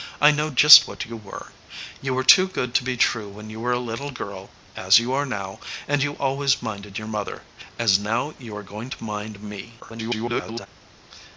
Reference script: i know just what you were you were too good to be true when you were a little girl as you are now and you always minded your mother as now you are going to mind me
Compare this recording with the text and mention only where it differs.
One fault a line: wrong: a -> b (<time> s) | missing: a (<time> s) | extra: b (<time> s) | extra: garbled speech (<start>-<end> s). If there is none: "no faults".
extra: garbled speech (9.8-10.7 s)